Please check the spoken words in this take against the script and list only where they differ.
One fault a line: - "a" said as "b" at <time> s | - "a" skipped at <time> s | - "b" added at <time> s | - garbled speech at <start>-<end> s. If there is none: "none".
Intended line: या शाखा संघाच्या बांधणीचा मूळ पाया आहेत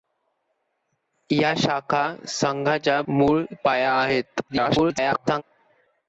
- "बांधणीचा" skipped at 3.0 s
- garbled speech at 4.5-5.4 s